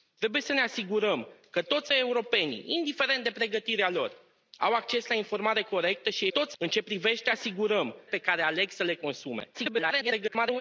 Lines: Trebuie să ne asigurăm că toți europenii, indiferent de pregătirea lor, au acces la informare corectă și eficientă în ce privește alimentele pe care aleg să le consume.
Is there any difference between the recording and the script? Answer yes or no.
yes